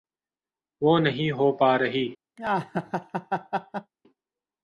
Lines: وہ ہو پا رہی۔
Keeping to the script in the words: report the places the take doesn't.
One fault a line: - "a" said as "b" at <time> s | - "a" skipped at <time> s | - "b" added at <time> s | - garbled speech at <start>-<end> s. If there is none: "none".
- "نہیں" added at 1.0 s